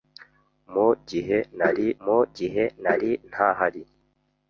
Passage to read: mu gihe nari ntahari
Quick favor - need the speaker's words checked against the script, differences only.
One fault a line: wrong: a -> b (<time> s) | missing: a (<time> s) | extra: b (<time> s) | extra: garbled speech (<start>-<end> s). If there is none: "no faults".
extra: mu gihe nari (2.0 s)